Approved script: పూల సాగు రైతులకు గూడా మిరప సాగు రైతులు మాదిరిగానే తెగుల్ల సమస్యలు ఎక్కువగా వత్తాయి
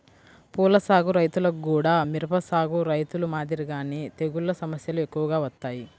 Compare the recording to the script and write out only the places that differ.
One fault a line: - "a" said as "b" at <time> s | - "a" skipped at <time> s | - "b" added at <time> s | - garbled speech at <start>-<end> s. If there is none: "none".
none